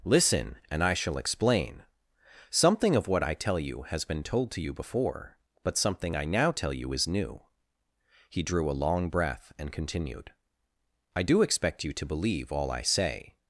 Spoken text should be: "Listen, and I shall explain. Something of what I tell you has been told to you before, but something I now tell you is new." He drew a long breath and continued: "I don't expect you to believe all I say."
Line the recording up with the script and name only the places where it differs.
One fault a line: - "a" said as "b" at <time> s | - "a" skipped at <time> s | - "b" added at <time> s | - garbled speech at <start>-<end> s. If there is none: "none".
- "don't" said as "do" at 11.2 s